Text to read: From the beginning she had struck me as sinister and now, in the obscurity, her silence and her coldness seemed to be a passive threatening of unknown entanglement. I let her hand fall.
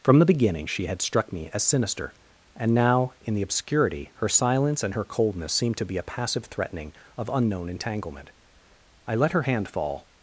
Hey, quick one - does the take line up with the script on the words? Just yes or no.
yes